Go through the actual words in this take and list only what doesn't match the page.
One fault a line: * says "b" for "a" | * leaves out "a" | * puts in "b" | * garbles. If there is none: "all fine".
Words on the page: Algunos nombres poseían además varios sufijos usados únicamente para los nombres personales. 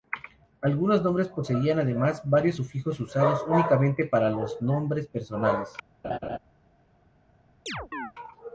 all fine